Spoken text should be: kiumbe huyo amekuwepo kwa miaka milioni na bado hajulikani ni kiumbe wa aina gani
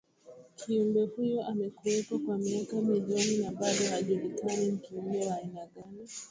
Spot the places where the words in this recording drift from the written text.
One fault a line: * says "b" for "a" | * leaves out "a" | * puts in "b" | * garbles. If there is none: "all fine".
all fine